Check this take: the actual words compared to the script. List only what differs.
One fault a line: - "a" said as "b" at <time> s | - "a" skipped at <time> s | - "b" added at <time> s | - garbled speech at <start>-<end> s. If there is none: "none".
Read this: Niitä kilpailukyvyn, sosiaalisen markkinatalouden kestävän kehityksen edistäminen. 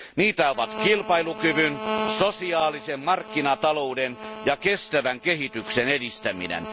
- "ovat" added at 0.5 s
- "ja" added at 4.4 s